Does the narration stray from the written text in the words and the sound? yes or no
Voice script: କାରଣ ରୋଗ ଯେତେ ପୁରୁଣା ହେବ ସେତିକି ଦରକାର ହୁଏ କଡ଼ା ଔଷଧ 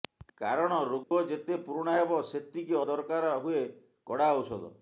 yes